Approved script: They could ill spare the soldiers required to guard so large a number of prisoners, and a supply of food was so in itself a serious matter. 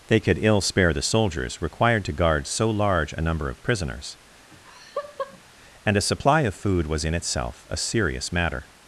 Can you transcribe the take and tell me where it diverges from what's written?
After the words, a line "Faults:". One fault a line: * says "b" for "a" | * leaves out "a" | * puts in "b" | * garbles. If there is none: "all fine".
They could ill spare the soldiers required to guard so large a number of prisoners, and a supply of food was in itself a serious matter.
Faults:
* leaves out "so"